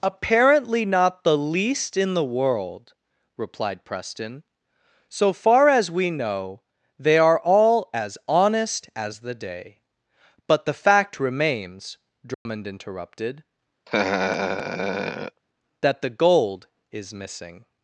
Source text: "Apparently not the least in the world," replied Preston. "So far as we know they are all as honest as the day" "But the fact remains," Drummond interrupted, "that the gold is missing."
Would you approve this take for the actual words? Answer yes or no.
yes